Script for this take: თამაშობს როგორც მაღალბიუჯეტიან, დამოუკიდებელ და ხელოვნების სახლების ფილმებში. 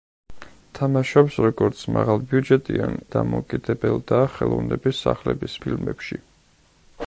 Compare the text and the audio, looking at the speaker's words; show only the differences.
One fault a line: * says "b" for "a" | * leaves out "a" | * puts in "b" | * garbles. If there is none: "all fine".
all fine